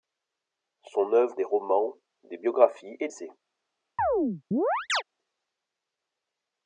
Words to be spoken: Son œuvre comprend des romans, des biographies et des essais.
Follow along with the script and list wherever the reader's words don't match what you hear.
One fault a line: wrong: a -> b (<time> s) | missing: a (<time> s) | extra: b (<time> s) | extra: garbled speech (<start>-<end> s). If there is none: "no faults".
missing: comprend (1.4 s)
missing: des (3.1 s)